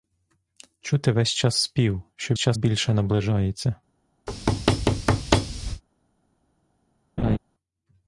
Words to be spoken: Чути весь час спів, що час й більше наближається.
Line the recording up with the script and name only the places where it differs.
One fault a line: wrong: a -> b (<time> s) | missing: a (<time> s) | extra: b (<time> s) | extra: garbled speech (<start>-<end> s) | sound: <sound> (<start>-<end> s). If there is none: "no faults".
sound: thud (4.3-5.8 s)
sound: laugh (7.2-7.4 s)